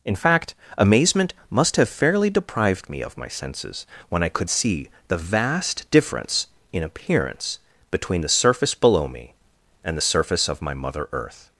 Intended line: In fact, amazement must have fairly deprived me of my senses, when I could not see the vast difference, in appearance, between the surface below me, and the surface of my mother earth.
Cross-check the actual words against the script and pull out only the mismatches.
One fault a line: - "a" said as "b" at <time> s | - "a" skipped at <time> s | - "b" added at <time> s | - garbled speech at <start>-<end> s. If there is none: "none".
- "not" skipped at 4.5 s